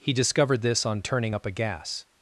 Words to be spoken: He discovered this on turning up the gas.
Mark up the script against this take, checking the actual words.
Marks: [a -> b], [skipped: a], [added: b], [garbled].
He discovered this on turning up [the -> a] gas.